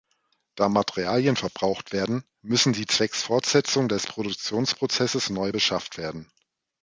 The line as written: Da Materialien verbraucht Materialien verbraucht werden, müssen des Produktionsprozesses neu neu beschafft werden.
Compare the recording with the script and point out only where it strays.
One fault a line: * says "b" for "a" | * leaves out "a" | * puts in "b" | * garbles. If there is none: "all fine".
* says "werden müssen sie zwecks Fortsetzung" for "Materialien verbraucht werden müssen"
* leaves out "neu"